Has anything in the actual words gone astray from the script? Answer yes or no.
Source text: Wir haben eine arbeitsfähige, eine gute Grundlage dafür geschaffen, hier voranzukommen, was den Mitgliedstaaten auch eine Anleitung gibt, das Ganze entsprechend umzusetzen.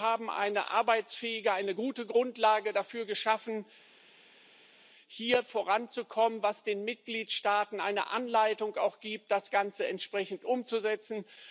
no